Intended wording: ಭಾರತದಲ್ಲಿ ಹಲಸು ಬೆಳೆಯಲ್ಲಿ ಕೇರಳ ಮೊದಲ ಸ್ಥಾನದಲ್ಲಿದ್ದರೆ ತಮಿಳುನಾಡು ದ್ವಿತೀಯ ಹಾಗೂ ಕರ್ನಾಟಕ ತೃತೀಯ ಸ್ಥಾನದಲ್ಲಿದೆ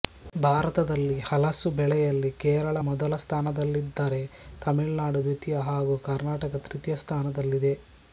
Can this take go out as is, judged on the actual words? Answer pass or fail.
pass